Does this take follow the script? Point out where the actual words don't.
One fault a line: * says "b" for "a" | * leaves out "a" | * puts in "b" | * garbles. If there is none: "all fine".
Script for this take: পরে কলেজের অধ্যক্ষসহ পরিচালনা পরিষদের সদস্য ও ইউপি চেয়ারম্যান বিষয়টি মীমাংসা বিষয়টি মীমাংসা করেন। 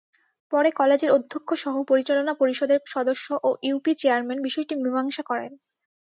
* leaves out "বিষয়টি মীমাংসা"